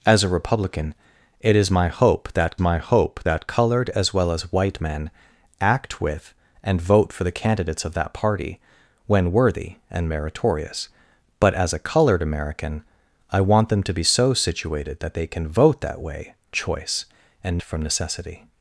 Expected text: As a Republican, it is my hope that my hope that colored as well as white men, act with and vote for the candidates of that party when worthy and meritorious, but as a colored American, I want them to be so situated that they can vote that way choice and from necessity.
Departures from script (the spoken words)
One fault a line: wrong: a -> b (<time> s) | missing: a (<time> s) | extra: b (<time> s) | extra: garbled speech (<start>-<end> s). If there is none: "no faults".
no faults